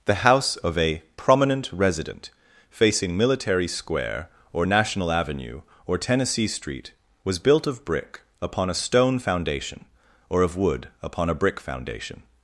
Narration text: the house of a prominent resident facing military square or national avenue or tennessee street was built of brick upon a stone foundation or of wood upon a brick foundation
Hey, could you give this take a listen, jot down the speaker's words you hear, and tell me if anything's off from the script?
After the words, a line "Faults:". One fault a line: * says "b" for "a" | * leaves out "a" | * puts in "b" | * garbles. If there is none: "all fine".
the house of a prominent resident facing military square or national avenue or tennessee street was built of brick upon a stone foundation or of wood upon a brick foundation
Faults:
all fine